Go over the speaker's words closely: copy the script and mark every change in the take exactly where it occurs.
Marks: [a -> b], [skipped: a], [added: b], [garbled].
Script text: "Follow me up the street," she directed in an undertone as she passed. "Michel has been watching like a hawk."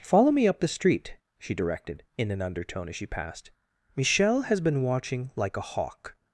"Follow me up the street," she directed in an undertone as she passed. "Michel has been watching like a hawk."